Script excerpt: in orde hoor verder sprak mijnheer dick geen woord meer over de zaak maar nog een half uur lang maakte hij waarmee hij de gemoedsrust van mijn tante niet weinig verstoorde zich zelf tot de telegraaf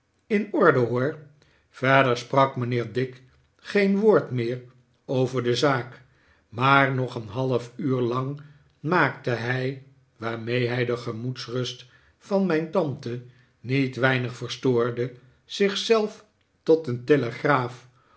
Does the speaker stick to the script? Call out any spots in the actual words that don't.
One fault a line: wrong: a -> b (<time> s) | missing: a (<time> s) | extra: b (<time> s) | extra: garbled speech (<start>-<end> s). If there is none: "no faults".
wrong: de -> een (16.9 s)